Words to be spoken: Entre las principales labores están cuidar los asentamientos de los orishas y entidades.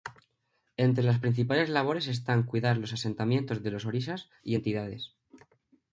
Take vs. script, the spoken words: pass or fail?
pass